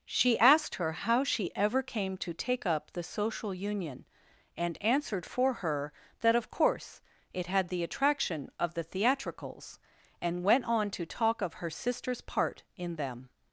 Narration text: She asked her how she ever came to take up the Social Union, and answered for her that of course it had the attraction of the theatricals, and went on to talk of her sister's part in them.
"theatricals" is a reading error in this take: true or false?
false